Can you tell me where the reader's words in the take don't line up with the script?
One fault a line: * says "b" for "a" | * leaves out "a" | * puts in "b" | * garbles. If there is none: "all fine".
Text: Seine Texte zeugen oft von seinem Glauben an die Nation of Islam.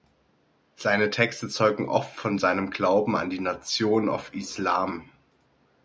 all fine